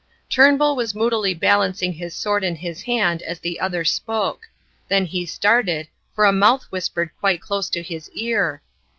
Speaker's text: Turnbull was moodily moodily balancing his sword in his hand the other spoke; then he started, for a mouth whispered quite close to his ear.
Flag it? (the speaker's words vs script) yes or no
yes